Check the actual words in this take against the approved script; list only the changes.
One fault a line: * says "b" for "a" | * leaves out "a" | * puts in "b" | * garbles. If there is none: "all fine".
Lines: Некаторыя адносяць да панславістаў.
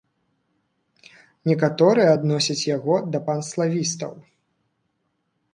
* puts in "яго"